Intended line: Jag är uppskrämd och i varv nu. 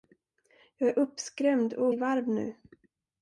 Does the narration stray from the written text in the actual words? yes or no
no